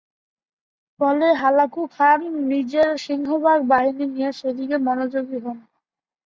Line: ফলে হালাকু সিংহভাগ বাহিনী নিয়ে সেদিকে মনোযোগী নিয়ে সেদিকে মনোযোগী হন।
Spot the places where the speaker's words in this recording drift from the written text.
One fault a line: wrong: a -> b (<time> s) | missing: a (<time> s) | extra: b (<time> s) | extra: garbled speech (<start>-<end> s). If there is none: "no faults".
extra: খান নিজের (1.9 s)
missing: নিয়ে সেদিকে মনোযোগী (5.4 s)